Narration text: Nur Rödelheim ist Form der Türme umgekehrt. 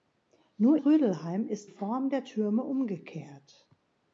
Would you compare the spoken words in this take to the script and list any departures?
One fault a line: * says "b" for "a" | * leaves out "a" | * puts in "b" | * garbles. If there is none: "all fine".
all fine